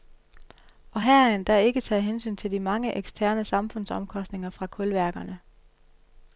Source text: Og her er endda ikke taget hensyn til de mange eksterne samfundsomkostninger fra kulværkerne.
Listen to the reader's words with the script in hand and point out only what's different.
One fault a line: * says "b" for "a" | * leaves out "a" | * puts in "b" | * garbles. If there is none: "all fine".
all fine